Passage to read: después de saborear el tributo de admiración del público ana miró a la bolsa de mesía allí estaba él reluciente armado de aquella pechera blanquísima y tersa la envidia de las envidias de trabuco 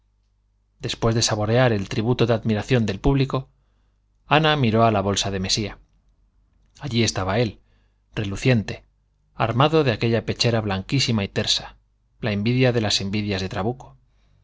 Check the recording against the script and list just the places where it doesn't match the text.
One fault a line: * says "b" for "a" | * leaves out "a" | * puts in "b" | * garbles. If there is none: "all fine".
all fine